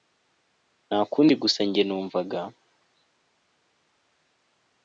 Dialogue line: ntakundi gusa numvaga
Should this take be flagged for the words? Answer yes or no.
yes